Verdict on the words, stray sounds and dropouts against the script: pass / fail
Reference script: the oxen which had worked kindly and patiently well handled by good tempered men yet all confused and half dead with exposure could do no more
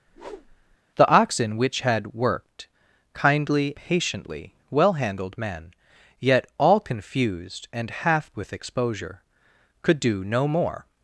fail